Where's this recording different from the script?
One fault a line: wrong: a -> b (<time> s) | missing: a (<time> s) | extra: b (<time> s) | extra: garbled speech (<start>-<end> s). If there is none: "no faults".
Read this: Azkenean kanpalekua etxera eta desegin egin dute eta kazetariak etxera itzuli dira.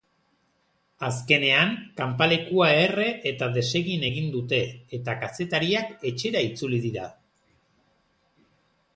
wrong: etxera -> erre (2.9 s)